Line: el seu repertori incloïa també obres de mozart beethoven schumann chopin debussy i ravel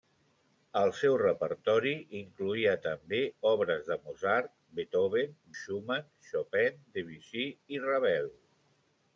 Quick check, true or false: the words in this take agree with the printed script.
true